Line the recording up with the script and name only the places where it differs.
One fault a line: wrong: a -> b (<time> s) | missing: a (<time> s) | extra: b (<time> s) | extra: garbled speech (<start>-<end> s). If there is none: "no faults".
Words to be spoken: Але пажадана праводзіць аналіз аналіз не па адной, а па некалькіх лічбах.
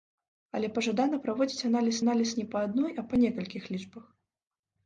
no faults